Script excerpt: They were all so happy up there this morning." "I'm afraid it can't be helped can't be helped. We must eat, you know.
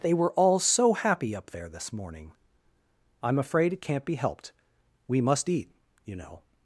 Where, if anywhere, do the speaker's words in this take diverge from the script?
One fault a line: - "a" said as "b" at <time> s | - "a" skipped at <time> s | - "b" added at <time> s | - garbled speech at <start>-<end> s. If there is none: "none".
- "can't be helped" skipped at 4.5 s